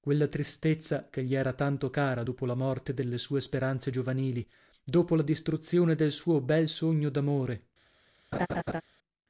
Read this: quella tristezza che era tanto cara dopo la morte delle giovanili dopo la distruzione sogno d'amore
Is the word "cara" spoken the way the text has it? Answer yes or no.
yes